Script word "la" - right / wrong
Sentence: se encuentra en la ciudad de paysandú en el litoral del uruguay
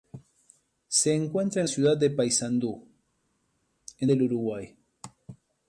wrong